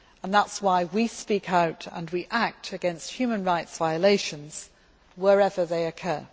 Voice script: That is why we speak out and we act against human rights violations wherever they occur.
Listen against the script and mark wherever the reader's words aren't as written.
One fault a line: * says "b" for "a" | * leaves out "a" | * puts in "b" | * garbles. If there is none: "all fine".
all fine